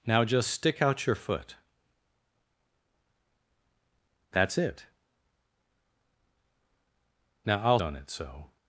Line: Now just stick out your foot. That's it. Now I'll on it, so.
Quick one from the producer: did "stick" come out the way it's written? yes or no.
yes